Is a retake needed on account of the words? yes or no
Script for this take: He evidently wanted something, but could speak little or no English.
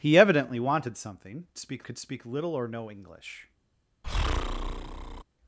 yes